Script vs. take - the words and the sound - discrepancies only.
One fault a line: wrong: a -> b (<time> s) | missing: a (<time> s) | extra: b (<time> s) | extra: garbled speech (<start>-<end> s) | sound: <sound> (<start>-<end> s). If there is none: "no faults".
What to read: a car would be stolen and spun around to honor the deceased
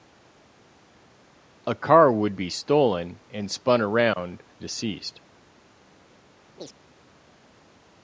missing: to honor the (4.4 s)
sound: chirp (6.6-6.7 s)